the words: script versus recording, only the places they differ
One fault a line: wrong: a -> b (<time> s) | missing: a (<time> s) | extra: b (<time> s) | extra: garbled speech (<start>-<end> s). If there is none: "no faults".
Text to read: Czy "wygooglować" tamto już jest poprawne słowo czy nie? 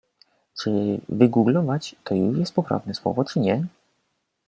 wrong: tamto -> to (2.0 s)